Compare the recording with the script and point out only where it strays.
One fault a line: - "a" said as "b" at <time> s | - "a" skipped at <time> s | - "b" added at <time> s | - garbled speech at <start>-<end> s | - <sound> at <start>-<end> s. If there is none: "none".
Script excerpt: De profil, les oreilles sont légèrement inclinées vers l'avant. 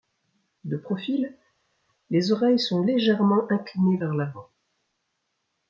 none